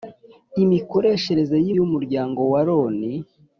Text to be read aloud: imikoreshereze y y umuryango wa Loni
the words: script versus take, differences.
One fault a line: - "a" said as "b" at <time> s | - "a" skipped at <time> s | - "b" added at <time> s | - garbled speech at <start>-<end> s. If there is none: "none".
none